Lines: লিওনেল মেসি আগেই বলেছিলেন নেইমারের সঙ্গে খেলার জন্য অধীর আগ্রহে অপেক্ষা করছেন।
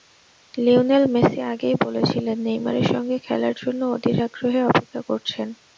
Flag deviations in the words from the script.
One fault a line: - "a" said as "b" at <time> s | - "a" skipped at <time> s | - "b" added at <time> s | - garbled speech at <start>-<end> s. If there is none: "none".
none